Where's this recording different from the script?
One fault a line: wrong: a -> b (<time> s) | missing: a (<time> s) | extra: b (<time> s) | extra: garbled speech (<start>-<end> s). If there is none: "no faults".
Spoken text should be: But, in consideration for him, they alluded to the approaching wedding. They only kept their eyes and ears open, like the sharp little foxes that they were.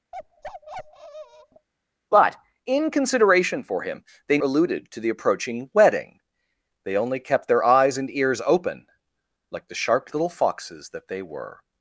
no faults